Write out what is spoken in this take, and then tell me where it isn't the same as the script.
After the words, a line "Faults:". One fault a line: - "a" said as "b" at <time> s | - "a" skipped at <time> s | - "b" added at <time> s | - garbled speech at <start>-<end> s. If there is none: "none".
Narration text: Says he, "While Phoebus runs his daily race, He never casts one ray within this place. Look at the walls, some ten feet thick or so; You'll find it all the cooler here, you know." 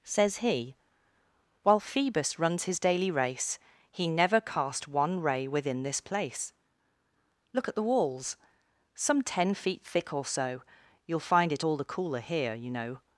Says he, "While Phoebus runs his daily race, He never cast one ray within this place. Look at the walls, some ten feet thick or so; You'll find it all the cooler here, you know."
Faults:
- "casts" said as "cast" at 4.4 s